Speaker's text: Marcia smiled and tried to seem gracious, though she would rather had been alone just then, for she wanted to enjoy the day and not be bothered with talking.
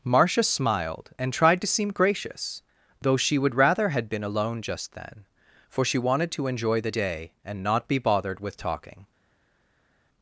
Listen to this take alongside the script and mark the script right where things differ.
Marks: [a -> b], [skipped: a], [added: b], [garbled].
Marcia smiled and tried to seem gracious, though she would rather had been alone just then, for she wanted to enjoy the day and not be bothered with talking.